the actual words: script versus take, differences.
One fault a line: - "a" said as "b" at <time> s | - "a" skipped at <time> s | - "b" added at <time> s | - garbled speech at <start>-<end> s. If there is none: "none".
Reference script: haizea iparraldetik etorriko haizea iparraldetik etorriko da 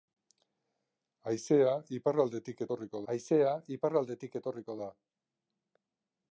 none